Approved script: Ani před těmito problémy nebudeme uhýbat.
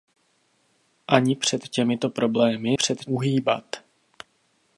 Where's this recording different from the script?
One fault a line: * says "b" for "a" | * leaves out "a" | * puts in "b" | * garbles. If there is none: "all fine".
* says "před" for "nebudeme"